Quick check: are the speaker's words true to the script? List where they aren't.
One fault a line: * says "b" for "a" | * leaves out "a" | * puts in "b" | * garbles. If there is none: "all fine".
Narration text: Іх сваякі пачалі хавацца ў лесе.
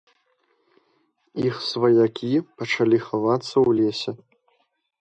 all fine